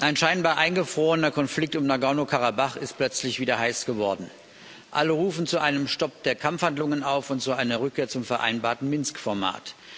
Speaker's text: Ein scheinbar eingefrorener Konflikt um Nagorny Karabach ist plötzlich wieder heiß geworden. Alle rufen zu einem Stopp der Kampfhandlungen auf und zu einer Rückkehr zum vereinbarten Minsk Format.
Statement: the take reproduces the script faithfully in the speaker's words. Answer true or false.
true